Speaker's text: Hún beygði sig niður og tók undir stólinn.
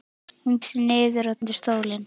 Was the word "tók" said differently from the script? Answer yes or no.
yes